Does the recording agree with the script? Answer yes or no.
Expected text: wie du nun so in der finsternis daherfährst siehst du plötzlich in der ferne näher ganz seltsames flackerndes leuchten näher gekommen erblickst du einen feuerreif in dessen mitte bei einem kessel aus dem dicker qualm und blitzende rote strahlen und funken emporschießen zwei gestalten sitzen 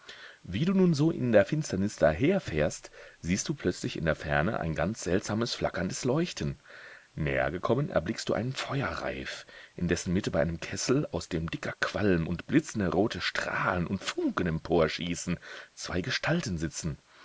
no